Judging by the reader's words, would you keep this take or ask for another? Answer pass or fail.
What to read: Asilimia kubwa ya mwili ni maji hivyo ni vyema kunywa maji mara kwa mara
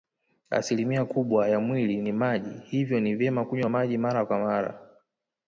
pass